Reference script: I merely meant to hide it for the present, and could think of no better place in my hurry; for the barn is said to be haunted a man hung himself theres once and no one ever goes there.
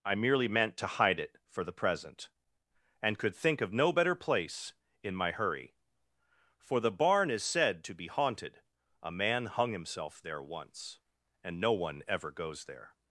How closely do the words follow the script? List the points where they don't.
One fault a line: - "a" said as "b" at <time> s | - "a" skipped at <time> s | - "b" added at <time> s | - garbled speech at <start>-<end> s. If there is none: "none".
- "theres" said as "there" at 10.2 s